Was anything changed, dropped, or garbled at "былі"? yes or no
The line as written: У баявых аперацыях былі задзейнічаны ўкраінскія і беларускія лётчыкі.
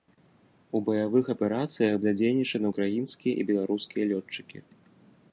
yes